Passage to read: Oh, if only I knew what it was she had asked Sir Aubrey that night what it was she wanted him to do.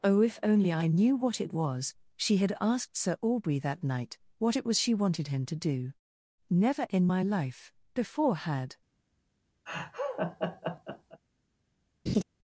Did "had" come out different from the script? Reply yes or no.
no